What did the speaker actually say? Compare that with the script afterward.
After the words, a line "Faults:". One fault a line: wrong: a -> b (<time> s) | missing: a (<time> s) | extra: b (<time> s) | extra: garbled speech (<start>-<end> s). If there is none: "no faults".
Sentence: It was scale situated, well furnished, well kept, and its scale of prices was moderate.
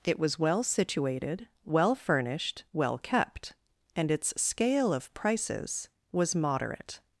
It was well situated, well furnished, well kept, and its scale of prices was moderate.
Faults:
wrong: scale -> well (0.4 s)